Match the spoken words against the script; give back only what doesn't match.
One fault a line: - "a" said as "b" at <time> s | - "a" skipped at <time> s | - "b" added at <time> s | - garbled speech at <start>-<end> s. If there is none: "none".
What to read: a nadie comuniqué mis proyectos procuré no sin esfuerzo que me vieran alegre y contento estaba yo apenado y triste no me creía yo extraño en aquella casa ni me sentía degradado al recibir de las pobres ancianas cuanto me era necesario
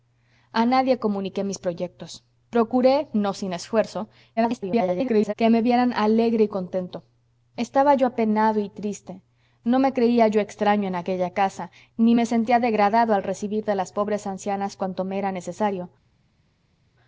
- garbled speech at 4.4-5.3 s